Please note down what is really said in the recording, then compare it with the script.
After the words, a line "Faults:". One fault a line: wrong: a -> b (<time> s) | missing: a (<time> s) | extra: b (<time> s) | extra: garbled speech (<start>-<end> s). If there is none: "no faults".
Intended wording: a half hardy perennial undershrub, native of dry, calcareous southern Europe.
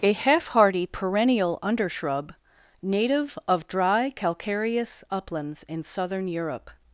a half hardy perennial undershrub, native of dry, calcareous uplands in southern Europe.
Faults:
extra: uplands in (5.1 s)